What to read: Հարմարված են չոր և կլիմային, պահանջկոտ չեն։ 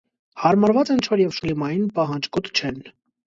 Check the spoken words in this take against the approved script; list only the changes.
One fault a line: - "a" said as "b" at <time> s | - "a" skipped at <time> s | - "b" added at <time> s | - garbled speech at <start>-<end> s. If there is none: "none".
none